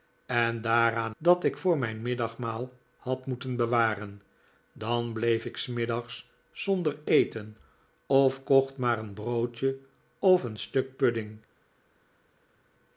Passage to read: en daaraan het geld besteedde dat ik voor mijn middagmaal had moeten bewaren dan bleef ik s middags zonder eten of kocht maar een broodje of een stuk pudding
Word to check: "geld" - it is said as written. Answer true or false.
false